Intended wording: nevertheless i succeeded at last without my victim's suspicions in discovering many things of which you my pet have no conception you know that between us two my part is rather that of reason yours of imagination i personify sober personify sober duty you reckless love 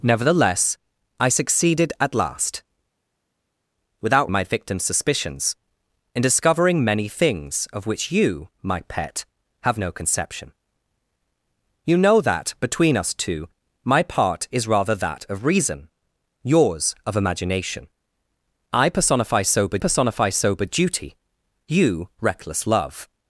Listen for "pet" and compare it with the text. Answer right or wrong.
right